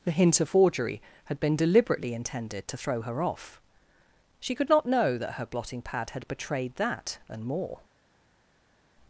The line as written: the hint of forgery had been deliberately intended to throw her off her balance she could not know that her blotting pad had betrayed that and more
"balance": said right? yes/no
no